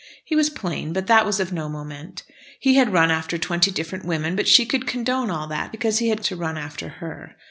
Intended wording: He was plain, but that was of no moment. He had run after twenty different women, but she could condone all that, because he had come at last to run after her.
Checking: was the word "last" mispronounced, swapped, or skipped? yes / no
yes